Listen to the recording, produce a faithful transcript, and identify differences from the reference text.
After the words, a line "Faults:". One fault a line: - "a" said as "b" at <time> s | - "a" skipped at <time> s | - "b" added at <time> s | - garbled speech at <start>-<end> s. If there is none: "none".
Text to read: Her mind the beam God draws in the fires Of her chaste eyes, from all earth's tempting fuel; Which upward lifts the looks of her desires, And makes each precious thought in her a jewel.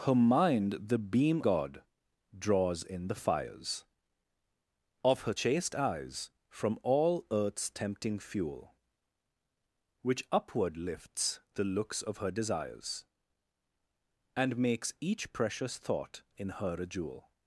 Her mind the beam God draws in the fires Of her chaste eyes, from all earth's tempting fuel; Which upward lifts the looks of her desires, And makes each precious thought in her a jewel.
Faults:
none